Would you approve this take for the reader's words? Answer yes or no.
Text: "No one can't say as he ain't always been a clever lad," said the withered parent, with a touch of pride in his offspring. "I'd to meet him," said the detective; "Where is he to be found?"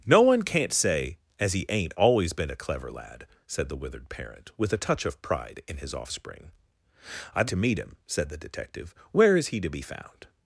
yes